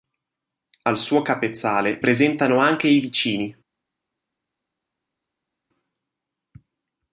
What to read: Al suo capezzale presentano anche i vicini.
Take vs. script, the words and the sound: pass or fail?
pass